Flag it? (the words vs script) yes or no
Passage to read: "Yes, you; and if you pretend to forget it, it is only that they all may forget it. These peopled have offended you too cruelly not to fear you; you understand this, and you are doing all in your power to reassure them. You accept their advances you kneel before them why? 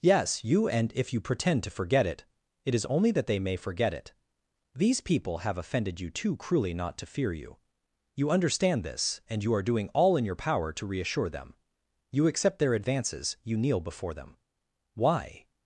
yes